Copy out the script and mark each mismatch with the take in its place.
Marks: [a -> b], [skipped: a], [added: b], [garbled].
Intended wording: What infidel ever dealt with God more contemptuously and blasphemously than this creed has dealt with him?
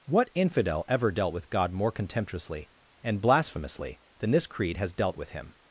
What infidel ever dealt with God more contemptuously and blasphemously than this creed has dealt with him?